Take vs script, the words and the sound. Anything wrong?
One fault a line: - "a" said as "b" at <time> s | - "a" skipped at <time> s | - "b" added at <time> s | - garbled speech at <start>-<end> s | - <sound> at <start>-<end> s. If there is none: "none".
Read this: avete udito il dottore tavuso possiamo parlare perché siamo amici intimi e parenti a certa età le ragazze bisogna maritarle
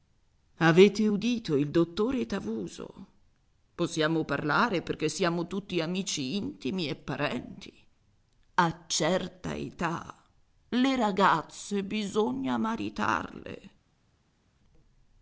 - "tutti" added at 5.5 s